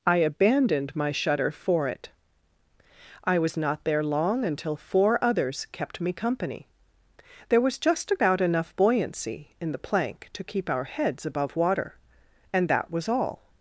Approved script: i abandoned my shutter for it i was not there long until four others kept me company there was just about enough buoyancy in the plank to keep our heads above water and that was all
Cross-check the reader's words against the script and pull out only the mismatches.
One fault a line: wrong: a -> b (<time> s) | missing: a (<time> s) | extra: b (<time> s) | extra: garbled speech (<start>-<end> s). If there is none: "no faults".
no faults